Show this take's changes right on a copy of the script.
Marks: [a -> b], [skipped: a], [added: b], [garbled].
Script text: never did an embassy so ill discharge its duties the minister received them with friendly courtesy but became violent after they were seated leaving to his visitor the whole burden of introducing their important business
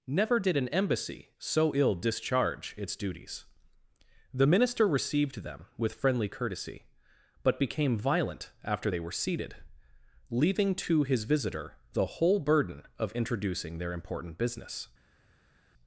never did an embassy so ill discharge its duties the minister received them with friendly courtesy but became violent after they were seated leaving to his visitor the whole burden of introducing their important business